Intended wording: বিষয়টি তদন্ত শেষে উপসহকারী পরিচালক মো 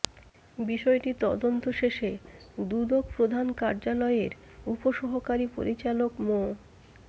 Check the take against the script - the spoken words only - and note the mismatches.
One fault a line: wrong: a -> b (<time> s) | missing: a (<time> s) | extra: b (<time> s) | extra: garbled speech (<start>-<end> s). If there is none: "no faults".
extra: দুদক প্রধান কার্যালয়ের (2.6 s)